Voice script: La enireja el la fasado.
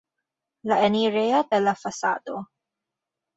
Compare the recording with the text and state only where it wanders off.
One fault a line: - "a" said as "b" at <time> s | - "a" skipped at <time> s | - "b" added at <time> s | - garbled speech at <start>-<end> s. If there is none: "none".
none